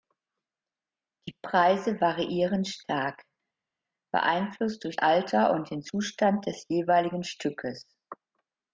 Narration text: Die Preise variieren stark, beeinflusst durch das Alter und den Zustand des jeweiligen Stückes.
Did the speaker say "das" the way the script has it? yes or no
no